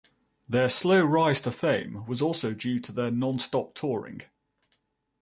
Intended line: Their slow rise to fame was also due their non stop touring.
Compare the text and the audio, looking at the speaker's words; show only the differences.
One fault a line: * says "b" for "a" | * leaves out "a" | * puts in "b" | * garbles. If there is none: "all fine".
* puts in "to"